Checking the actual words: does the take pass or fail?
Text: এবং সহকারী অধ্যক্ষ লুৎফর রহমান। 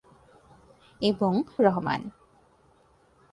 fail